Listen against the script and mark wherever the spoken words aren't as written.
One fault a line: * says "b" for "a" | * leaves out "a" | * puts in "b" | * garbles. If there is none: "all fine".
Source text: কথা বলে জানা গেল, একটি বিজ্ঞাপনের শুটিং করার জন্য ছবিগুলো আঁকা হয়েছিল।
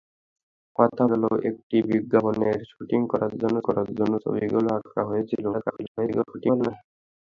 * leaves out "বলে জানা"
* puts in "করার জন্য"
* garbles